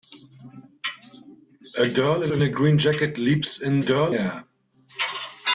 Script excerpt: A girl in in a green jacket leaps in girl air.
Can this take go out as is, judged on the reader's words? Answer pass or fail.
pass